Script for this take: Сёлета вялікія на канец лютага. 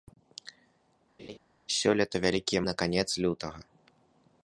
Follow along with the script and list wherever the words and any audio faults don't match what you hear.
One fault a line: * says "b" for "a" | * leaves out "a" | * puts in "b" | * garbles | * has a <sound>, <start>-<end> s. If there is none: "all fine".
* has a laugh, 1.2-1.4 s